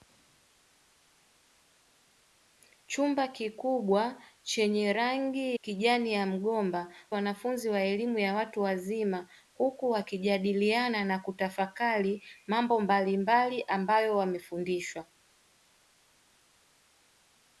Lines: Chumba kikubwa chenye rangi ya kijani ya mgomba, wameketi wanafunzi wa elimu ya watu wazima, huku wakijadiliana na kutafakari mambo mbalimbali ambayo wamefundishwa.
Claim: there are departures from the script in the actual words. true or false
true